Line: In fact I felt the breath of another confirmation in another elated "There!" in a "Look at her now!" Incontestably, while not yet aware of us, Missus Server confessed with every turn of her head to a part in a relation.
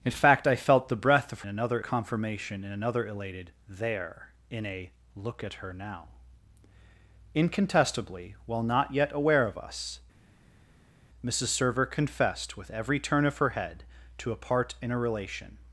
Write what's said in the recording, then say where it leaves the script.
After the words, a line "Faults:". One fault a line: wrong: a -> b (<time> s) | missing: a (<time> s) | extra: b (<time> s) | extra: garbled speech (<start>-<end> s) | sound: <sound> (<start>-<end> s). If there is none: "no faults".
In fact I felt the breath of another confirmation in another elated "There!" in a "Look at her now!" Incontestably, while not yet aware of us, Missus Server confessed with every turn of her head to a part in a relation.
Faults:
no faults